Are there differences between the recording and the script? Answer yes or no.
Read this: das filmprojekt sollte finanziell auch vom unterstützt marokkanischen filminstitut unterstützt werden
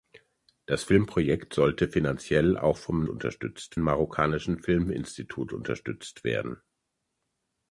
no